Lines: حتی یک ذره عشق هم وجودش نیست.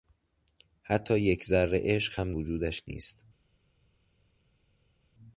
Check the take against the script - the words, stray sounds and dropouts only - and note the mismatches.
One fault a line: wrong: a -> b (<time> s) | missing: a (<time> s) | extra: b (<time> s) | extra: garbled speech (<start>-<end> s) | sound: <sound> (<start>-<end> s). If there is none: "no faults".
no faults